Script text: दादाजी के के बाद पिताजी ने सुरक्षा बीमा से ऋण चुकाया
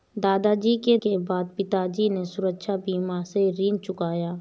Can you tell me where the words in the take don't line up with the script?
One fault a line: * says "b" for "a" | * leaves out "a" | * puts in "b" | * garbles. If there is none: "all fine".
all fine